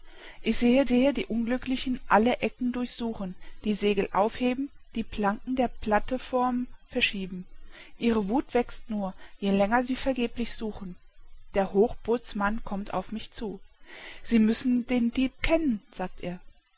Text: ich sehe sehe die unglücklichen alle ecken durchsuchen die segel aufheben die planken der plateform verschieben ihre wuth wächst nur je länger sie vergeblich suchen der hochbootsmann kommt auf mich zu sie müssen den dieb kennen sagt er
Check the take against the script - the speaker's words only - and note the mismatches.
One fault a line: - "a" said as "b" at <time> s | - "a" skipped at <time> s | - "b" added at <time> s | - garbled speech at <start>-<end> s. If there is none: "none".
none